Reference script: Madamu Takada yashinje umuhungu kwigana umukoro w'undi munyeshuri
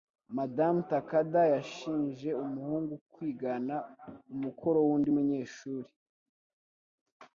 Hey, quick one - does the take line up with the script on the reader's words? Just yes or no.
yes